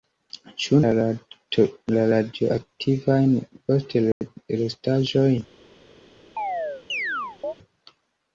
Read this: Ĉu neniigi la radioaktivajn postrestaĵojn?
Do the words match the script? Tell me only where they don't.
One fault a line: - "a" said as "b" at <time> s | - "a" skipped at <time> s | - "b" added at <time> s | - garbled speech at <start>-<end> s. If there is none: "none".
- "neniigi" skipped at 0.8 s